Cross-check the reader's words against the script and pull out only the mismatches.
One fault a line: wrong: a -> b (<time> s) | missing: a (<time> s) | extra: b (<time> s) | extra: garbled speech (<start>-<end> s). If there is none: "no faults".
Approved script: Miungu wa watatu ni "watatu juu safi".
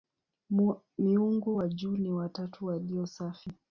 wrong: watatu -> juu (1.7 s)
wrong: juu -> walio (2.7 s)